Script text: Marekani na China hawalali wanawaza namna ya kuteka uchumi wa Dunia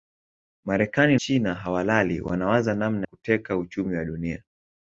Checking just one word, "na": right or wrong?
wrong